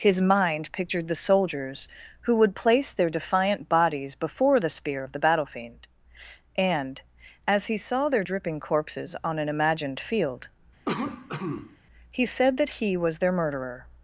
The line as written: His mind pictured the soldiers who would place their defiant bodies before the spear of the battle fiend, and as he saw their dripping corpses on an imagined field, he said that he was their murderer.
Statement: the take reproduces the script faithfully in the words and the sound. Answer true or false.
false